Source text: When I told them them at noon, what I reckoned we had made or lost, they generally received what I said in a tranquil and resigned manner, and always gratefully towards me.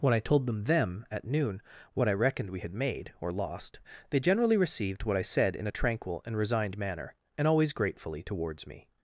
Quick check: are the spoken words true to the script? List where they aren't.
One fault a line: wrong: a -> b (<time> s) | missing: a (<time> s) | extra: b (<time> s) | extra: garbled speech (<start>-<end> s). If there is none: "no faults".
no faults